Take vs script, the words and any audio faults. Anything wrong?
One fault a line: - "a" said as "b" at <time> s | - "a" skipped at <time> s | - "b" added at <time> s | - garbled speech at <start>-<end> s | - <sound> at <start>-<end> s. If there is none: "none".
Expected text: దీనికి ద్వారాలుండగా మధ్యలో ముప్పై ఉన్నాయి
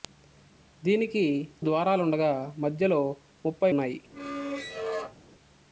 - squeak at 4.1-5.2 s